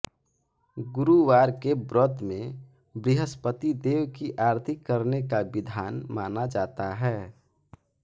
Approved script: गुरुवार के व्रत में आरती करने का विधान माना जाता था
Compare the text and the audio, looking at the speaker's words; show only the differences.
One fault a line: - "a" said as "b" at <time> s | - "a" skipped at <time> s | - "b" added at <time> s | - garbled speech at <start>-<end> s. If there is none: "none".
- "बृहस्पति देव की" added at 3.0 s
- "था" said as "है" at 7.0 s